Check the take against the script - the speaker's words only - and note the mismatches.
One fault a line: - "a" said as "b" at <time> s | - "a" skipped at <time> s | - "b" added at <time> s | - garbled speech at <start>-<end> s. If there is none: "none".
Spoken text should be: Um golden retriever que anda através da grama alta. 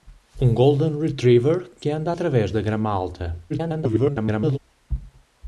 - garbled speech at 3.5-4.6 s